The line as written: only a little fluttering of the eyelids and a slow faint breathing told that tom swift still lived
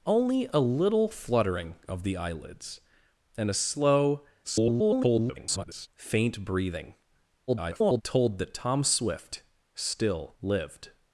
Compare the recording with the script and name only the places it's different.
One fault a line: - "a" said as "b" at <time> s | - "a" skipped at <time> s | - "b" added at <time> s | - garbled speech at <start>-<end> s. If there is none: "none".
- garbled speech at 4.4-5.9 s
- garbled speech at 7.5-8.0 s